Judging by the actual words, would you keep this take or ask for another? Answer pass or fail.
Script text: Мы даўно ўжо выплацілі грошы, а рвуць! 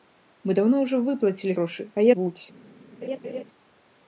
pass